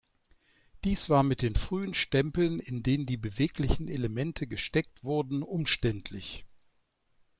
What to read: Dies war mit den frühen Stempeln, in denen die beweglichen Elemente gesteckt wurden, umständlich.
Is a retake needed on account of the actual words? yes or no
no